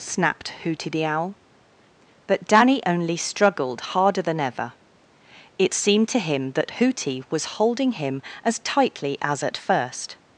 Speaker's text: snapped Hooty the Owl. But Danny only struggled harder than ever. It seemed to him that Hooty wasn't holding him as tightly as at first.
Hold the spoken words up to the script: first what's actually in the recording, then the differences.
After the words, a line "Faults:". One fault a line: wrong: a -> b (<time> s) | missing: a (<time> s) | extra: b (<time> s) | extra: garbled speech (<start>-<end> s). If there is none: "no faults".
snapped Hooty the Owl. But Danny only struggled harder than ever. It seemed to him that Hooty was holding him as tightly as at first.
Faults:
wrong: wasn't -> was (7.3 s)